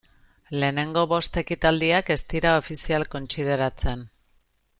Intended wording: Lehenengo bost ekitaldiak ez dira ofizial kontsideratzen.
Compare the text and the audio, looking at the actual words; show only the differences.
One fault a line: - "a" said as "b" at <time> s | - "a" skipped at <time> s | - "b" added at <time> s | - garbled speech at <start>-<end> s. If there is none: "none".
none